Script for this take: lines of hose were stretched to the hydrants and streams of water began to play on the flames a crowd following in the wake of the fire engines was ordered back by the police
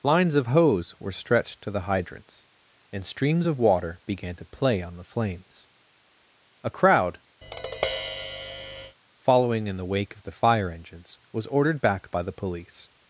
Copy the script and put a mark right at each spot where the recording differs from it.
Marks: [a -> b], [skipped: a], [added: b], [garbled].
lines of hose were stretched to the hydrants and streams of water began to play on the flames a crowd following in the wake of the fire engines was ordered back by the police